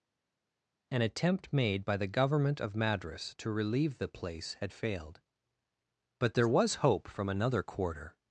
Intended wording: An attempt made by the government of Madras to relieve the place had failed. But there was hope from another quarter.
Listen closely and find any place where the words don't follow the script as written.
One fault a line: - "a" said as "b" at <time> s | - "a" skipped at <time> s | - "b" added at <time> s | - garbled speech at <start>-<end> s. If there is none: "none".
none